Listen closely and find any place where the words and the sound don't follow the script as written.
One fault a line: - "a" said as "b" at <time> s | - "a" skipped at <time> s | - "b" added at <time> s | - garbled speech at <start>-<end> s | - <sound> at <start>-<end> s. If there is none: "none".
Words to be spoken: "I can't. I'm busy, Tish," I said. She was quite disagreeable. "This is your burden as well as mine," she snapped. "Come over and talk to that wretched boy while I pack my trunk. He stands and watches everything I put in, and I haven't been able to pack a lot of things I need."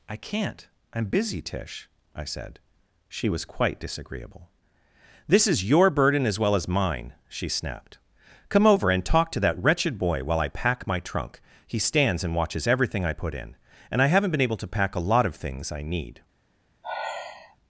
- sigh at 16.8-17.6 s